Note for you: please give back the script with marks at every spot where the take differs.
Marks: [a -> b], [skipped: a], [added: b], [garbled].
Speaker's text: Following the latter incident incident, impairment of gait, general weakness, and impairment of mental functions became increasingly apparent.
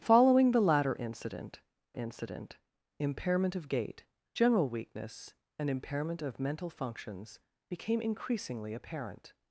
Following the latter incident incident, impairment of gait, general weakness, and impairment of mental functions became increasingly apparent.